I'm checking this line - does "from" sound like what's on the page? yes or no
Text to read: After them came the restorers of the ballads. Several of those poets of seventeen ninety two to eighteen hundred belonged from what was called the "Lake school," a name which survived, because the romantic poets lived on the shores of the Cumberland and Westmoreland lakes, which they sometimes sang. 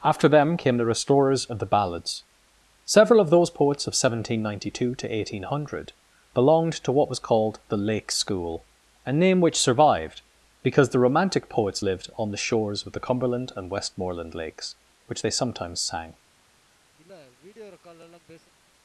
no